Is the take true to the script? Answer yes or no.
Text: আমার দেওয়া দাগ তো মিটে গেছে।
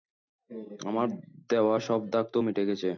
no